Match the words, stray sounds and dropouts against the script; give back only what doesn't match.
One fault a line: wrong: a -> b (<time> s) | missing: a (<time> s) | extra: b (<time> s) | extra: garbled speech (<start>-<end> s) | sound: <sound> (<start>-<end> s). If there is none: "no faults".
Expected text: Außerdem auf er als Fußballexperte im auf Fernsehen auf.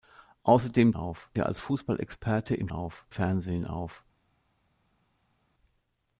no faults